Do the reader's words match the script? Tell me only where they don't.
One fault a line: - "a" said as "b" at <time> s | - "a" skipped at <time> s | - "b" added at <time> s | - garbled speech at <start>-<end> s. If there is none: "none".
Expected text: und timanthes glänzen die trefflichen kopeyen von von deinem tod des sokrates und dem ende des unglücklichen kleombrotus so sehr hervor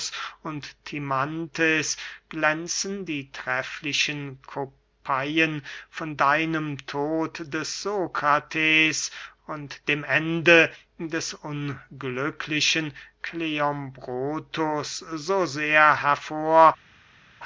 - "von" skipped at 6.1 s